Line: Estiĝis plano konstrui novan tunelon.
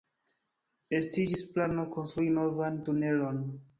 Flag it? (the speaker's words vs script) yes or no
no